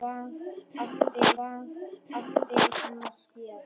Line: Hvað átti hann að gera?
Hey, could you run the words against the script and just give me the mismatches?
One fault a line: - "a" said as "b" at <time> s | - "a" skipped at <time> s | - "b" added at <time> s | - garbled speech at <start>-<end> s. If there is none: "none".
- "hvað átti" added at 1.4 s